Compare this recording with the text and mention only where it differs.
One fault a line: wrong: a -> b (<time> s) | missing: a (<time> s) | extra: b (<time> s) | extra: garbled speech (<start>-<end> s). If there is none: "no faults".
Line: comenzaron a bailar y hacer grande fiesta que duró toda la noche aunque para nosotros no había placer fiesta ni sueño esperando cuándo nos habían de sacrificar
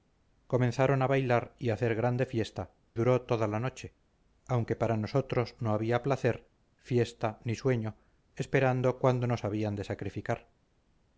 missing: que (2.7 s)